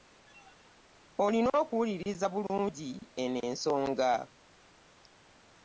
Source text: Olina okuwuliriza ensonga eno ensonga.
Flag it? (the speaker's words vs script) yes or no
yes